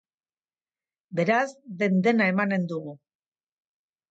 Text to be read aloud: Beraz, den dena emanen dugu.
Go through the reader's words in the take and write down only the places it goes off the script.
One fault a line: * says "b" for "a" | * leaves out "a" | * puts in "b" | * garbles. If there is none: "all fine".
all fine